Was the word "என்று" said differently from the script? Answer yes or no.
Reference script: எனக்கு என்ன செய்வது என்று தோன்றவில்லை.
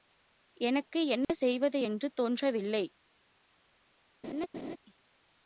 no